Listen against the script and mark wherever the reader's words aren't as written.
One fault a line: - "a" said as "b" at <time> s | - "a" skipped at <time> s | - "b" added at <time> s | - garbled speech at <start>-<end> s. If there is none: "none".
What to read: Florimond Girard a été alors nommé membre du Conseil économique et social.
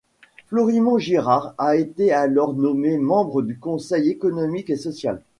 none